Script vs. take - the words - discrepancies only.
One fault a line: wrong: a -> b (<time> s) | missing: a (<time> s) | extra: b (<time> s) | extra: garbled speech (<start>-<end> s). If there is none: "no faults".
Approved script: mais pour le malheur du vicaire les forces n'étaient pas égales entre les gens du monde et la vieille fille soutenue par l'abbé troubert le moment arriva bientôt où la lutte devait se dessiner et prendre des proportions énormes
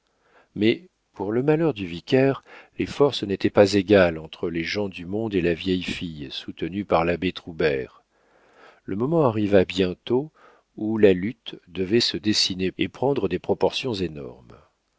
no faults